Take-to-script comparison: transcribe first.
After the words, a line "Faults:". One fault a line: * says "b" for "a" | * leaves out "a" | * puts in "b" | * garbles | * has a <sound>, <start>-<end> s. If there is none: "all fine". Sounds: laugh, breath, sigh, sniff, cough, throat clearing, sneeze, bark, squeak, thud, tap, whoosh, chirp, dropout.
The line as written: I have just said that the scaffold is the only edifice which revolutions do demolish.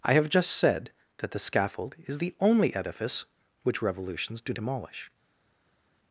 I have just said that the scaffold is the only edifice which revolutions do demolish.
Faults:
all fine